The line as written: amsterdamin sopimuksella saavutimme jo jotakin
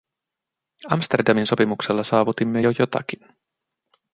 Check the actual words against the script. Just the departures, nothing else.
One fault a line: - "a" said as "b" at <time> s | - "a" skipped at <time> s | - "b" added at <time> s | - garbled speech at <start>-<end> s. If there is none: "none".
none